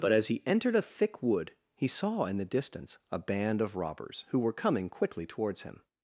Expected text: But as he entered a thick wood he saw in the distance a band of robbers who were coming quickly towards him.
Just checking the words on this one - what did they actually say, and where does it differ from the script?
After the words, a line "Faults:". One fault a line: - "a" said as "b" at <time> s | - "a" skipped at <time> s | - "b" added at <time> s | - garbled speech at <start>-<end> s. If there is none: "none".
But as he entered a thick wood he saw in the distance a band of robbers who were coming quickly towards him.
Faults:
none